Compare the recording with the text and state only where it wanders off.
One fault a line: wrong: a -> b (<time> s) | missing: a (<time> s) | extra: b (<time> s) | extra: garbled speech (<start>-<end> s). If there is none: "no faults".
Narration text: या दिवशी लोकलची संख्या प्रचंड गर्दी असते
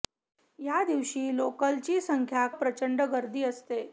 no faults